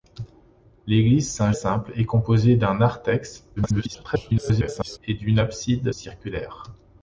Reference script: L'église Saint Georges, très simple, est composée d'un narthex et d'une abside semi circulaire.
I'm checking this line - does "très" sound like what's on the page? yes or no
no